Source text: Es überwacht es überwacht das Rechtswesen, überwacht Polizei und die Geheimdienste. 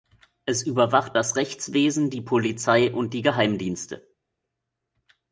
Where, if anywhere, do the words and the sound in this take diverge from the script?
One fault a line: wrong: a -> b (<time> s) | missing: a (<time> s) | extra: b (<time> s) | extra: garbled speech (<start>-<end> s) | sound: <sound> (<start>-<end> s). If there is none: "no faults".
missing: es überwacht (1.1 s)
wrong: überwacht -> die (2.1 s)